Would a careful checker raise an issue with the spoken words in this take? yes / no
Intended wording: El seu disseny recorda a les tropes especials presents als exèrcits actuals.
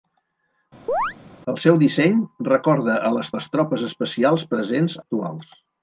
yes